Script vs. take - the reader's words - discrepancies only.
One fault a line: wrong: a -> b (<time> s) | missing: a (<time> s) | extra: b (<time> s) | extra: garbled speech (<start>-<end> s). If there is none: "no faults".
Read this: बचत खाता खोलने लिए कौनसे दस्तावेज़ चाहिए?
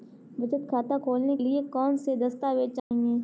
no faults